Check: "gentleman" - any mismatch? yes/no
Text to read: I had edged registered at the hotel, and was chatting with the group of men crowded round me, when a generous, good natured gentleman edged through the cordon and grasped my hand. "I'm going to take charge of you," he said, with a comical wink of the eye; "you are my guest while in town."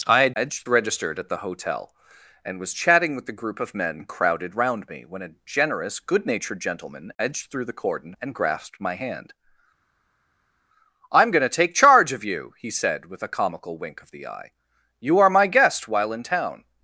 no